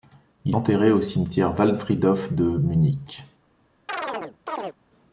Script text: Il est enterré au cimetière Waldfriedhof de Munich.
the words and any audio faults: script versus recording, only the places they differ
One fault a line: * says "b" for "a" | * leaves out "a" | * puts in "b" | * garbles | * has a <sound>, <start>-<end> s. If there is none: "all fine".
* leaves out "est"
* has a chirp, 3.9-4.8 s